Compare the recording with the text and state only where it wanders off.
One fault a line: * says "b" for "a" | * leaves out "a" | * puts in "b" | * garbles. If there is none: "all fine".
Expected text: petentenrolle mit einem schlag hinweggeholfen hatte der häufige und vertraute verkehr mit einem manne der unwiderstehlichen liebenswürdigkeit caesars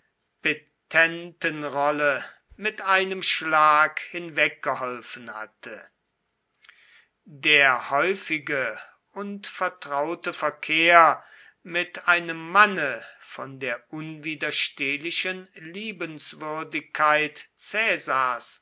* puts in "von"